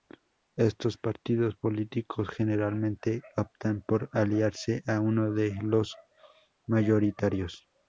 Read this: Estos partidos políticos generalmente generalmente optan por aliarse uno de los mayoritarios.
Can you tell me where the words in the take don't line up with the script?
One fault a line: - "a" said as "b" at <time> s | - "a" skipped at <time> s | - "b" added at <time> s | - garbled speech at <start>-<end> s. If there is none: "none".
- "generalmente" skipped at 3.2 s
- "a" added at 4.9 s